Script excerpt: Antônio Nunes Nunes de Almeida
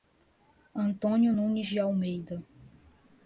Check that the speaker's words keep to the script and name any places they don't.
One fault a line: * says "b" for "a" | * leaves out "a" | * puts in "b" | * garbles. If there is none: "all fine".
* leaves out "Nunes"